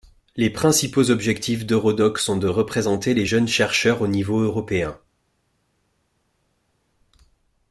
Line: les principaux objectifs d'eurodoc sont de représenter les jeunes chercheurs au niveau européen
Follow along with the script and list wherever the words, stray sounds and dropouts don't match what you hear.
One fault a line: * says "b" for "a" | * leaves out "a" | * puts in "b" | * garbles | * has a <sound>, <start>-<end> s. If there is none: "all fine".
all fine